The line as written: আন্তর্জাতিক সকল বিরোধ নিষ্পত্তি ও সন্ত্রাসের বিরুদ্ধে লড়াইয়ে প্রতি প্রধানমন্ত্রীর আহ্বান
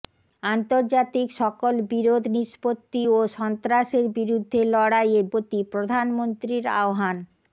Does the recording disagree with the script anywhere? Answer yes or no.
no